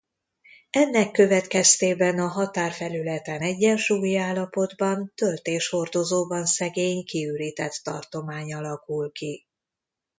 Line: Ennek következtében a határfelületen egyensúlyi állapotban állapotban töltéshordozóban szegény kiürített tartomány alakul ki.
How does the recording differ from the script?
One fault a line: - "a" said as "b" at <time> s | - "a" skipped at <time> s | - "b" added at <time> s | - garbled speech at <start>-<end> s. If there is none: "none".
- "állapotban" skipped at 5.1 s